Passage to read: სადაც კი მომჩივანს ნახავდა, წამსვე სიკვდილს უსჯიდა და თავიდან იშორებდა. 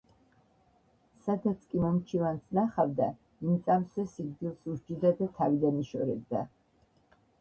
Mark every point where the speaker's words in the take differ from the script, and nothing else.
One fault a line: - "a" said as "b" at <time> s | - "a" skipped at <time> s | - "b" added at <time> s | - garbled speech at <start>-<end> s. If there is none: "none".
- "იმ" added at 3.5 s